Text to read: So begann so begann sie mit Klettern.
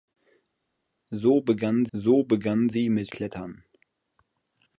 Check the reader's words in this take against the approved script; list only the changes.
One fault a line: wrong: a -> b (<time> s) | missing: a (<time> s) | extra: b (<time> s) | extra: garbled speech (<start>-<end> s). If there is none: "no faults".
no faults